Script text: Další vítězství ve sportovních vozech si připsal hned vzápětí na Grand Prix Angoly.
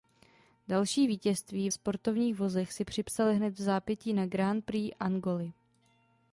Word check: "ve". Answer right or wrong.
wrong